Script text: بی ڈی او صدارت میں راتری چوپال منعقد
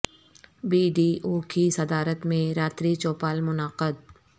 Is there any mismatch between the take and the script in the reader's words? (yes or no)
yes